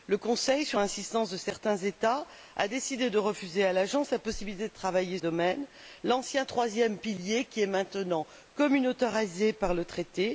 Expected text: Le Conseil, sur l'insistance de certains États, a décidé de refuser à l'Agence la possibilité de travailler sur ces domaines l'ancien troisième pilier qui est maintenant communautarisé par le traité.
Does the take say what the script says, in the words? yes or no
no